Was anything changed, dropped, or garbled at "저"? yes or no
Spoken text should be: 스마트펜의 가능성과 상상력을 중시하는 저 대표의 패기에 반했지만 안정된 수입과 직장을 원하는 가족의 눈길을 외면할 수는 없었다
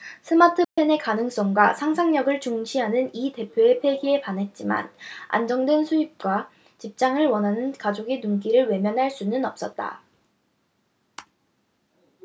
yes